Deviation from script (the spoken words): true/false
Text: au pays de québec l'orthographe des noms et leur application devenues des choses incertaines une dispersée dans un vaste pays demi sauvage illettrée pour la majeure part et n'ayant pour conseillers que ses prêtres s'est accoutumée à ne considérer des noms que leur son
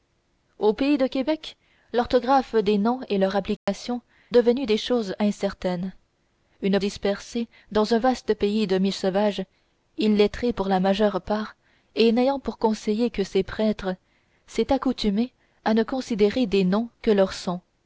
false